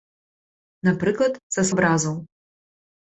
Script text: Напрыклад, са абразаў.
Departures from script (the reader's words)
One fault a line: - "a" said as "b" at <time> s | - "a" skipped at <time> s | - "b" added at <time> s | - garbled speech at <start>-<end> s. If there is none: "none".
none